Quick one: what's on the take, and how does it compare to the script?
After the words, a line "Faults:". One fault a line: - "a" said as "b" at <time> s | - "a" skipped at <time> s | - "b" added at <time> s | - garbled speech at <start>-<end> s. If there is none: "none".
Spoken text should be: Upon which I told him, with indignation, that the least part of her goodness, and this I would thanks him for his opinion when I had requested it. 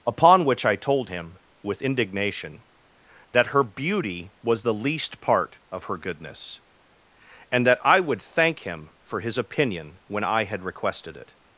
Upon which I told him, with indignation, that her beauty was the least part of her goodness, and that I would thank him for his opinion when I had requested it.
Faults:
- "her beauty was" added at 3.5 s
- "this" said as "that" at 7.7 s
- "thanks" said as "thank" at 8.2 s